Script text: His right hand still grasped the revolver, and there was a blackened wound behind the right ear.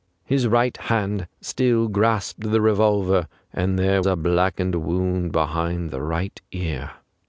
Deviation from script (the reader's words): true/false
true